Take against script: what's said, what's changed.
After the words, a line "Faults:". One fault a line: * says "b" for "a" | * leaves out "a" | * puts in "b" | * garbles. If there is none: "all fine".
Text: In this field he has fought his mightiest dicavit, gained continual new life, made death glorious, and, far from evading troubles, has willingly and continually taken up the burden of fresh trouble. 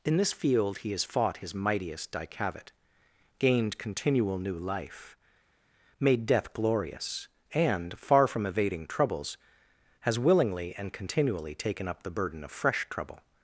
In this field he has fought his mightiest dicavit, gained continual new life, made death glorious, and, far from evading troubles, has willingly and continually taken up the burden of fresh trouble.
Faults:
all fine